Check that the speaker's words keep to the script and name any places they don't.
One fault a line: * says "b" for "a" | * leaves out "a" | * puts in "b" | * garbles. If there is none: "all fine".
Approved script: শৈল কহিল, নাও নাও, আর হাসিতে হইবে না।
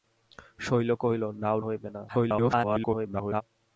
* leaves out "নাও আর হাসিতে"
* garbles